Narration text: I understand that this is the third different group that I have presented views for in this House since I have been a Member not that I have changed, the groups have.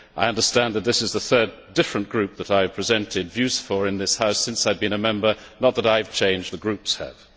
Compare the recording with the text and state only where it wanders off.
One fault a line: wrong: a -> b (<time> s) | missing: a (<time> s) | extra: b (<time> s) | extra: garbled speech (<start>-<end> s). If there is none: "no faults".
no faults